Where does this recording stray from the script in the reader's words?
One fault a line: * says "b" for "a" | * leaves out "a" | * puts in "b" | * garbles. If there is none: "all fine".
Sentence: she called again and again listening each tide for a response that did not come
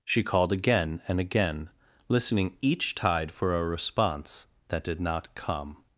all fine